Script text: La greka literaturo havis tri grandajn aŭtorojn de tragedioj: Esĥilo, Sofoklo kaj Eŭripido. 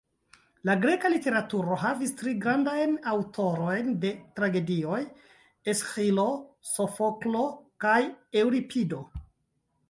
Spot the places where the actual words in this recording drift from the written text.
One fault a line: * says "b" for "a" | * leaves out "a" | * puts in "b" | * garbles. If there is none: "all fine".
all fine